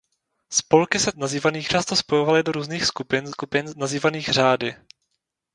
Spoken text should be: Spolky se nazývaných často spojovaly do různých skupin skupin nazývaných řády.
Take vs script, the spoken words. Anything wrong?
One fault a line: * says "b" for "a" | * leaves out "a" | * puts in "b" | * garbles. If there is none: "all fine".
all fine